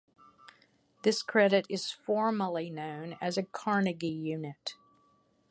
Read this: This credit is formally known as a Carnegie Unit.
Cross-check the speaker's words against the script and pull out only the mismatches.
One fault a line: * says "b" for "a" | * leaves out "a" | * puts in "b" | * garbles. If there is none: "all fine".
all fine